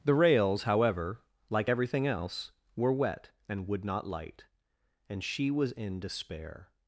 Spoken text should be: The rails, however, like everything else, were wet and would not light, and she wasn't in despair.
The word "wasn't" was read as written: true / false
false